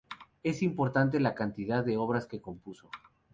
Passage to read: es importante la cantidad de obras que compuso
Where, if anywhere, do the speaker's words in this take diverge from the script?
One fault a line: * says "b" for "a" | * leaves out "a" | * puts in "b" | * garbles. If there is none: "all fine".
all fine